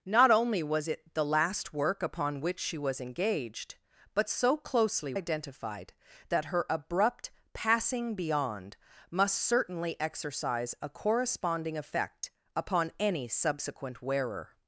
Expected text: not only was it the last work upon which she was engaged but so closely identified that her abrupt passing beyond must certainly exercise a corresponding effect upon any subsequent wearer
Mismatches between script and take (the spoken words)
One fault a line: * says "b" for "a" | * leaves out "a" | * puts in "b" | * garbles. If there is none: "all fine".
all fine